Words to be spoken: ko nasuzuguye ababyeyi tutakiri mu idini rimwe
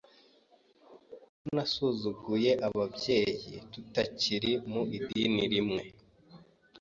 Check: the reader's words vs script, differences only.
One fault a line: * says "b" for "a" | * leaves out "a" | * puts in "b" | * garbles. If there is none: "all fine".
all fine